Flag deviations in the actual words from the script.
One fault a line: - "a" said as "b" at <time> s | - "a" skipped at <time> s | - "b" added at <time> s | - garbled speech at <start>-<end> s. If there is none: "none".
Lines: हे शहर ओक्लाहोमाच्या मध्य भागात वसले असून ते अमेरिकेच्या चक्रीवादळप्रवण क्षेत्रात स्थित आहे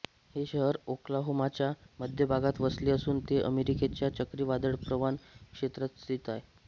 none